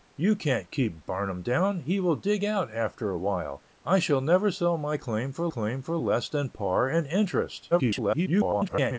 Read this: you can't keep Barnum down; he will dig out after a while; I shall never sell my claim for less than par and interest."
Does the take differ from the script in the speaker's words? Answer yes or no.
yes